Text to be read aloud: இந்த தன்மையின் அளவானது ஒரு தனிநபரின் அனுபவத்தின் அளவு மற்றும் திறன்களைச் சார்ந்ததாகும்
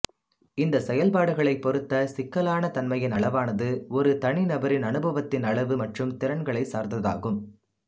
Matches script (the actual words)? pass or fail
fail